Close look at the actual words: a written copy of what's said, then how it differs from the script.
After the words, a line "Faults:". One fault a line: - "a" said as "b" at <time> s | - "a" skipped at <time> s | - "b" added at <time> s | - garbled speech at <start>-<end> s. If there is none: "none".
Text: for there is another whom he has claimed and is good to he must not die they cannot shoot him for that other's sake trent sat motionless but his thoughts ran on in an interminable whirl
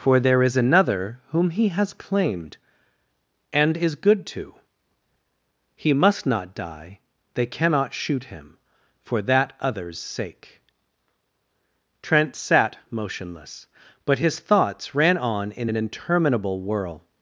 for there is another whom he has claimed and is good to he must not die they cannot shoot him for that other's sake trent sat motionless but his thoughts ran on in an interminable whirl
Faults:
none